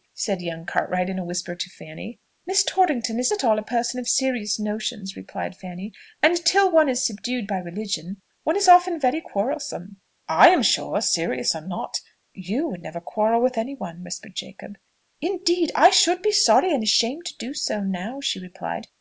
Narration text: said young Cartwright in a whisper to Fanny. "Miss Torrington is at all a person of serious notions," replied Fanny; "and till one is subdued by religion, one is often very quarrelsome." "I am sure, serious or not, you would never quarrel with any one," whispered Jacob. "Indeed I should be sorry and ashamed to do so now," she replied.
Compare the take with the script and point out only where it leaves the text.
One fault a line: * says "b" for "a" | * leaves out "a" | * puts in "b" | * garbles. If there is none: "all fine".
all fine